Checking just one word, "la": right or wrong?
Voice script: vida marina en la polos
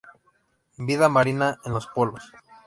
wrong